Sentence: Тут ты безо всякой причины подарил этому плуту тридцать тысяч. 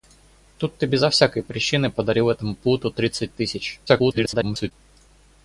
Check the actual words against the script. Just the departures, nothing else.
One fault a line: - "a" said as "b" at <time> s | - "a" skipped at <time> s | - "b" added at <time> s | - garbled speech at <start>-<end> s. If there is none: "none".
- garbled speech at 3.9-4.7 s